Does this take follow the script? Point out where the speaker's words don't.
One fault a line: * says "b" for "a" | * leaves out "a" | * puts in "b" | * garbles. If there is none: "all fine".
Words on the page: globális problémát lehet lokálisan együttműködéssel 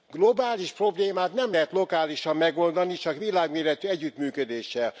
* puts in "nem"
* puts in "megoldani csak világméretű"